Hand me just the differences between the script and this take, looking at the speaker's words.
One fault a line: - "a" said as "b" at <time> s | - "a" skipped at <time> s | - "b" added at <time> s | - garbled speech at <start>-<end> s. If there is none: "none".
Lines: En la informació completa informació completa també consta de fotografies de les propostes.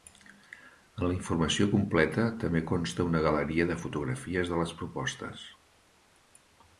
- "informació completa també consta" said as "també consta una galeria" at 2.4 s